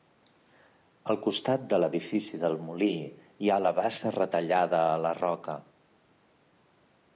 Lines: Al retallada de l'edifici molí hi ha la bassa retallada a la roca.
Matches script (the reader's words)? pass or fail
fail